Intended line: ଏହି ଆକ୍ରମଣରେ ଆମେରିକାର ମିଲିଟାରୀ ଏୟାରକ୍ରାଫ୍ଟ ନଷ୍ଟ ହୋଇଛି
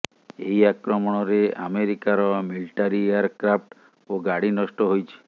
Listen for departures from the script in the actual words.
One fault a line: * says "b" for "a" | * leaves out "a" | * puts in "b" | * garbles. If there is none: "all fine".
* puts in "ଓ ଗାଡ଼ି"